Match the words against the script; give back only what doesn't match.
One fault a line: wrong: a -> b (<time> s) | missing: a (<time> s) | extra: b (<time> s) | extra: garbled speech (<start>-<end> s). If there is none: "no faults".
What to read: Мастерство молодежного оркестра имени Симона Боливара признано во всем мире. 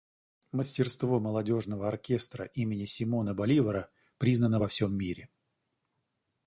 no faults